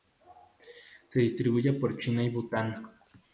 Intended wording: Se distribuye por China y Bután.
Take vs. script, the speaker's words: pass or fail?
pass